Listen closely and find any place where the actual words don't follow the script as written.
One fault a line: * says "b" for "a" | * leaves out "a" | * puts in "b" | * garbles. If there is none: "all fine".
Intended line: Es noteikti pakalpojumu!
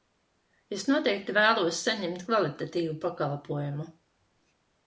* puts in "vēlos saņemt kvalitatīvu"